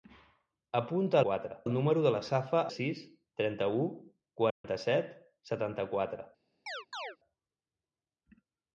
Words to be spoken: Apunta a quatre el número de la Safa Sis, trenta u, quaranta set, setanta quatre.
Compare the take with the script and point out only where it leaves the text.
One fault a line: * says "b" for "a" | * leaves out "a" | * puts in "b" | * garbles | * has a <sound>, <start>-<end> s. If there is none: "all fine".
* has a dropout, 4.5-4.6 s
* has a chirp, 6.7-7.2 s